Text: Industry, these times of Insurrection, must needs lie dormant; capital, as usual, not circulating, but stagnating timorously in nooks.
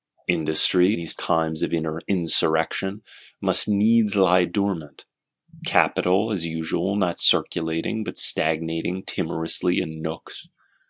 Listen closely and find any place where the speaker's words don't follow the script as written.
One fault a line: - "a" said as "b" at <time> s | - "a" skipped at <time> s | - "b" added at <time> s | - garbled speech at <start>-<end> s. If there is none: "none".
none